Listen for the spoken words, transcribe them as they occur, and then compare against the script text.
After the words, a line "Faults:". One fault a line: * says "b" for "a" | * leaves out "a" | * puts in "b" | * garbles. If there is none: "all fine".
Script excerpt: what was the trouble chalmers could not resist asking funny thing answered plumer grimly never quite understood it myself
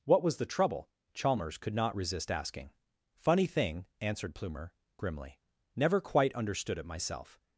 what was the trouble chalmers could not resist asking funny thing answered plumer grimly never quite understood it myself
Faults:
all fine